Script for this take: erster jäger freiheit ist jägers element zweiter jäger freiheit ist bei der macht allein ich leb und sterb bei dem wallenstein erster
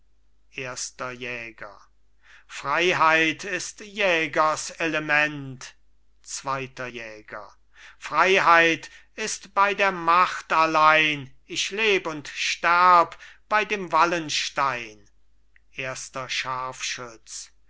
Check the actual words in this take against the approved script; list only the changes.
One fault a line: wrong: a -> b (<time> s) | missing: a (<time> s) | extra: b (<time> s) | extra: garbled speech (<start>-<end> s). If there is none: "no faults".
no faults